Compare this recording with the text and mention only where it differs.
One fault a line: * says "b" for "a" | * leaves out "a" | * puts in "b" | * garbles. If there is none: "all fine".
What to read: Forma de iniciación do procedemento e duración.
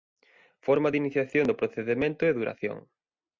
all fine